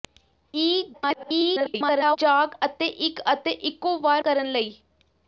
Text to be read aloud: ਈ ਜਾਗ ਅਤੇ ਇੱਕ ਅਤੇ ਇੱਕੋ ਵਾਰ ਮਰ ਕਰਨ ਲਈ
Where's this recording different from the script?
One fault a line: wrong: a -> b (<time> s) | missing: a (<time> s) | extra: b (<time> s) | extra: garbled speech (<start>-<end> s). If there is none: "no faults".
extra: garbled speech (0.9-2.2 s)
missing: ਮਰ (4.2 s)